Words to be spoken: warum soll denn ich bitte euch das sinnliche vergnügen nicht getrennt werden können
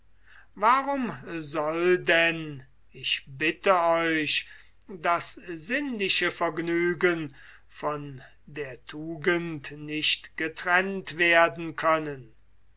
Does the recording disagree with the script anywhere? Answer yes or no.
yes